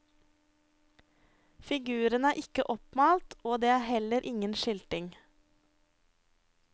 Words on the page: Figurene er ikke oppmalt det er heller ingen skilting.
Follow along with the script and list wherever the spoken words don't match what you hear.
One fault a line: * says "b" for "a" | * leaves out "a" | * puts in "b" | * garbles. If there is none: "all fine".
* puts in "og"